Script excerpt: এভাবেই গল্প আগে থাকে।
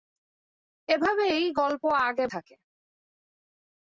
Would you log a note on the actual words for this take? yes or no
no